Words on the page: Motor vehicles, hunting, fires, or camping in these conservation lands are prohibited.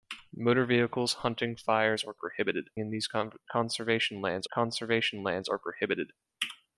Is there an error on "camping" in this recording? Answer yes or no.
yes